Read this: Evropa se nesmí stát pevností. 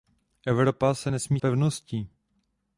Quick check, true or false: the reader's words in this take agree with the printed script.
false